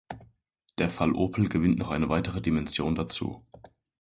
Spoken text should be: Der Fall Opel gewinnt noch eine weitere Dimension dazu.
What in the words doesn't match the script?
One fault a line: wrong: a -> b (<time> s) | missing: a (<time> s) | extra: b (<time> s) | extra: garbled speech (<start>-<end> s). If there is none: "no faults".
no faults